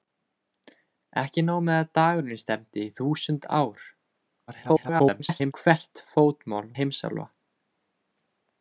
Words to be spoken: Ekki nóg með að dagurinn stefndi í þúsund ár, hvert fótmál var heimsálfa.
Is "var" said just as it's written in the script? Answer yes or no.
no